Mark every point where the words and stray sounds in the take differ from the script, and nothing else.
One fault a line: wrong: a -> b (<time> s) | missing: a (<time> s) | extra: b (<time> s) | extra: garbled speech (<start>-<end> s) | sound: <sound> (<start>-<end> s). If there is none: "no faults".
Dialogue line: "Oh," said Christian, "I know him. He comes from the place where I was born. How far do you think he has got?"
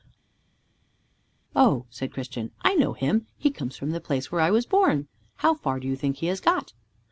no faults